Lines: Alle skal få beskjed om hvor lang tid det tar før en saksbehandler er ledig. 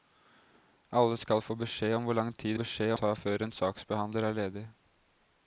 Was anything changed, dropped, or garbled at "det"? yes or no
yes